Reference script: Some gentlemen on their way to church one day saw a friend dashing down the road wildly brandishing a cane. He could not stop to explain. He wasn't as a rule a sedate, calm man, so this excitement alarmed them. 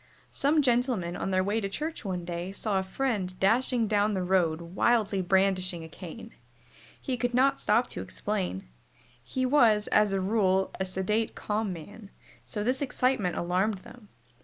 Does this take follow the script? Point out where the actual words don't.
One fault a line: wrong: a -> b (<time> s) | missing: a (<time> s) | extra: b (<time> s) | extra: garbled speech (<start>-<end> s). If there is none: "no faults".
wrong: wasn't -> was (9.4 s)